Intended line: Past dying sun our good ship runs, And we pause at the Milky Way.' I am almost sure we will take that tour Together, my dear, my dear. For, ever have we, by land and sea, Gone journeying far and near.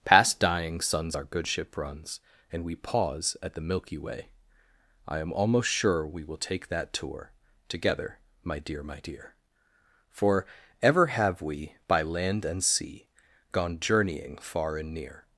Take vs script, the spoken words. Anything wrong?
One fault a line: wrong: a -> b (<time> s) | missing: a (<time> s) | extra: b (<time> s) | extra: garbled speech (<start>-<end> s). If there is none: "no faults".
wrong: sun -> suns (0.8 s)